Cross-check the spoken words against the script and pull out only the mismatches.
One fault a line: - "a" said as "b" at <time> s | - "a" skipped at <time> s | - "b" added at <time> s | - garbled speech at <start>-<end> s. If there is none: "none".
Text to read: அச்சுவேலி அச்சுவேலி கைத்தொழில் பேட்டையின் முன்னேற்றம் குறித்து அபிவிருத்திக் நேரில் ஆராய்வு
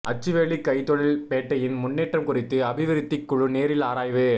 - "அச்சுவேலி" skipped at 0.6 s
- "குழு" added at 3.2 s